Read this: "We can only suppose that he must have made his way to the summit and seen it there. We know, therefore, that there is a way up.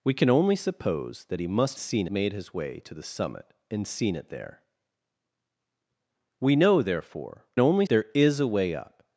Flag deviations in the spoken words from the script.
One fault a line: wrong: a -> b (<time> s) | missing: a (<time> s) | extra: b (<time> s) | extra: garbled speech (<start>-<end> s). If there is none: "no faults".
wrong: have -> seen (1.8 s)
wrong: that -> only (7.6 s)